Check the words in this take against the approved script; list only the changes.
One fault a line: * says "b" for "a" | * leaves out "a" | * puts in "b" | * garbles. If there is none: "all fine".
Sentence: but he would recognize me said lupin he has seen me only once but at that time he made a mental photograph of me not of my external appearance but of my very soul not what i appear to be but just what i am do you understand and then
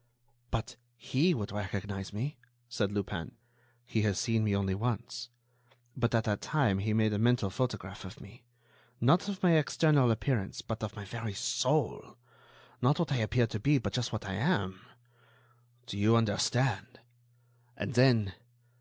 all fine